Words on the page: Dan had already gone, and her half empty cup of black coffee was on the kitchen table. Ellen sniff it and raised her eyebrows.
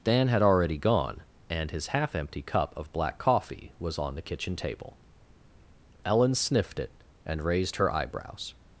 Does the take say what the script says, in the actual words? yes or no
no